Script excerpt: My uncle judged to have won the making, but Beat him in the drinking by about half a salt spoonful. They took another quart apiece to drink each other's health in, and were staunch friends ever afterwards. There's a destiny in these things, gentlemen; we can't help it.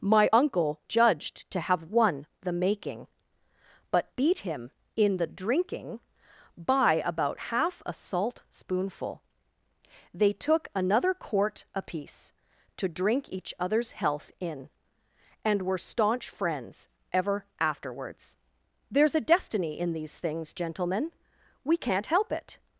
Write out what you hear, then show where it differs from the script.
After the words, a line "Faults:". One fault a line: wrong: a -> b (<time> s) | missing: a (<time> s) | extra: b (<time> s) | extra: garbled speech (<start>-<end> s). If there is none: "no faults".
My uncle judged to have won the making, but Beat him in the drinking by about half a salt spoonful. They took another quart apiece to drink each other's health in, and were staunch friends ever afterwards. There's a destiny in these things, gentlemen; we can't help it.
Faults:
no faults